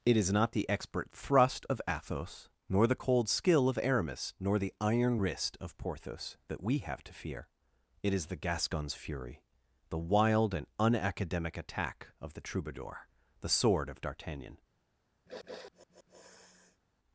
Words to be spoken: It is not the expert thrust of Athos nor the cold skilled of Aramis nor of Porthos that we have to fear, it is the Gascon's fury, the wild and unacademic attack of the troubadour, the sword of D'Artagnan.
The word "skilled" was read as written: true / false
false